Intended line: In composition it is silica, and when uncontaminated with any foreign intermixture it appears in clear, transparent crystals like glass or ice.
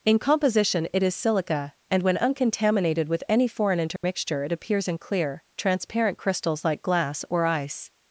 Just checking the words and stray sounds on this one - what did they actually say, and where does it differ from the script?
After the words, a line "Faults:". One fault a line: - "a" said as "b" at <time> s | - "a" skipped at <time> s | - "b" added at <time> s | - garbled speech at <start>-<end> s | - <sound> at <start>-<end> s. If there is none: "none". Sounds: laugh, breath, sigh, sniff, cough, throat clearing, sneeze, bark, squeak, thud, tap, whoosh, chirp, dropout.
In composition it is silica, and when uncontaminated with any foreign intermixture it appears in clear, transparent crystals like glass or ice.
Faults:
- dropout at 4.0-4.0 s